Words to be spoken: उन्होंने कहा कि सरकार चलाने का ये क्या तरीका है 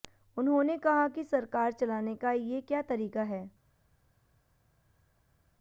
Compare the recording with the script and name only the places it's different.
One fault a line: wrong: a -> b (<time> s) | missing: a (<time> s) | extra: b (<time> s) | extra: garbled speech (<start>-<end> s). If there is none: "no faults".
no faults